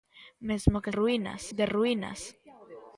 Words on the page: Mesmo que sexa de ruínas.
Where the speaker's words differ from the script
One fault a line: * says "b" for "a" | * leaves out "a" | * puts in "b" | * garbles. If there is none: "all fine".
* says "ruínas" for "sexa"